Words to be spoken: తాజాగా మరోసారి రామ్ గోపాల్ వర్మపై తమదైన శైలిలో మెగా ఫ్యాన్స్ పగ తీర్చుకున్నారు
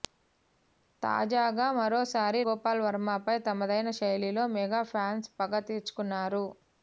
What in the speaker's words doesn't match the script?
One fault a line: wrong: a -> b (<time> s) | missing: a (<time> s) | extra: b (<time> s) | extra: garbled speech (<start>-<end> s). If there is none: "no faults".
missing: రామ్ (2.4 s)